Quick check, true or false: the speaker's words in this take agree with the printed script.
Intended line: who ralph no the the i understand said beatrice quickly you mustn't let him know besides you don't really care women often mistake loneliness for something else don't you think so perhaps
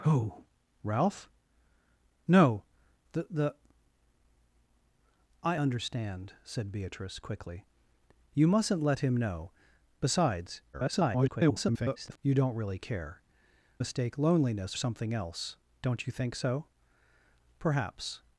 false